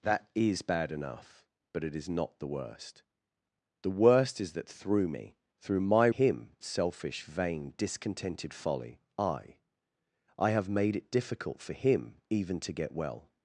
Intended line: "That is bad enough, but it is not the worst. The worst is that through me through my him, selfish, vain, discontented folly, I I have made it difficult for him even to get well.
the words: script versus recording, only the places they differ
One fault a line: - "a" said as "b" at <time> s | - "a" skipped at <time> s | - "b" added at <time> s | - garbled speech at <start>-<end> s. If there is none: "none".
none